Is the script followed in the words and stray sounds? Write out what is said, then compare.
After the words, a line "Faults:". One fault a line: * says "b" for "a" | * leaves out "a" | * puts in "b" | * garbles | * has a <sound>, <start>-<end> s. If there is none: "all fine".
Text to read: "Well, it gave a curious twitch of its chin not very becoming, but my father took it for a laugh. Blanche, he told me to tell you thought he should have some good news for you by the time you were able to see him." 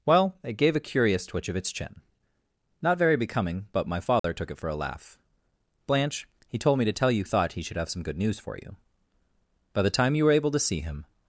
"Well, it gave a curious twitch of its chin not very becoming, but my father took it for a laugh. Blanche, he told me to tell you thought he should have some good news for you by the time you were able to see him."
Faults:
* has a dropout, 4.2-4.2 s